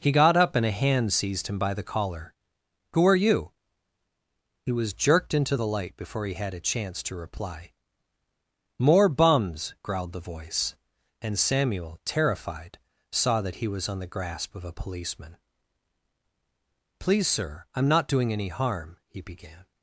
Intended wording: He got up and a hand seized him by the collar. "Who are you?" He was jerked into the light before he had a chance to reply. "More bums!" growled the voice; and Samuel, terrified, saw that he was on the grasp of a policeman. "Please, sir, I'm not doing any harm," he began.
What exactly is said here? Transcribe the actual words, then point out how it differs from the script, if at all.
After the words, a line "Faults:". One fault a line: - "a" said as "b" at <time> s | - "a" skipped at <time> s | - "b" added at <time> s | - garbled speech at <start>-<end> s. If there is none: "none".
He got up and a hand seized him by the collar. "Who are you?" He was jerked into the light before he had a chance to reply. "More bums!" growled the voice; and Samuel, terrified, saw that he was on the grasp of a policeman. "Please, sir, I'm not doing any harm," he began.
Faults:
none